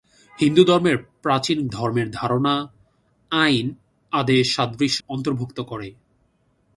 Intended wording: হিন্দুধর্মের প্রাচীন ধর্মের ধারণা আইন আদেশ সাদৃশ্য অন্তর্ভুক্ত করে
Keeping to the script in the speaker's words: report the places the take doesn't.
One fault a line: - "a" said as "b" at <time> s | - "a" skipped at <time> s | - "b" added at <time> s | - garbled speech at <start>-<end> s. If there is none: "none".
none